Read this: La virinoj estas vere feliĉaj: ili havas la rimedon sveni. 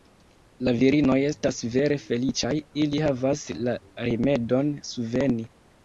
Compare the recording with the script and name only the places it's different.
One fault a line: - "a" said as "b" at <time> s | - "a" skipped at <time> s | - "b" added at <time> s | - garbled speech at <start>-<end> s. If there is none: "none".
none